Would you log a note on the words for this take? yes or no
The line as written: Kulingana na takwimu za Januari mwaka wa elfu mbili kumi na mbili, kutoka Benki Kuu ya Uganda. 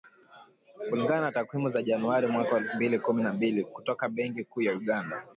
no